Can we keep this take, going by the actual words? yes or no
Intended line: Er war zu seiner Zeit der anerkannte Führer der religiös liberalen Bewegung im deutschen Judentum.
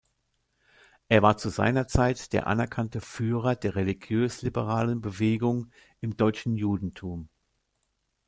yes